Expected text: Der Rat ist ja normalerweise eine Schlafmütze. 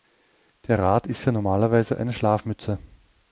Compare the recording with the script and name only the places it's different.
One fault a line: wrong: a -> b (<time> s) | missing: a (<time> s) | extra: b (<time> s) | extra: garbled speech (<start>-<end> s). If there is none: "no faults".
no faults